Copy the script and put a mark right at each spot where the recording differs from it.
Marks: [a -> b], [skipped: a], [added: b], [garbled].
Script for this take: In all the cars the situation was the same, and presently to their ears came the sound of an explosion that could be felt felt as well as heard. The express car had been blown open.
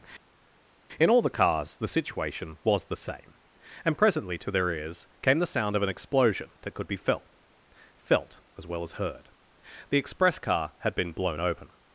In all the cars the situation was the same, and presently to their ears came the sound of an explosion that could be felt felt as well as heard. The express car had been blown open.